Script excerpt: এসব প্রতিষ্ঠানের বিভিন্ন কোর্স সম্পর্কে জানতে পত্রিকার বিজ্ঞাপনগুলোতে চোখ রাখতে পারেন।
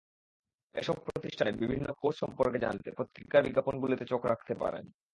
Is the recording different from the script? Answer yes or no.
no